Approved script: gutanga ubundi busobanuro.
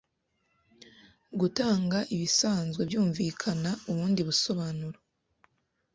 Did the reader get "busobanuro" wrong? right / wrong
right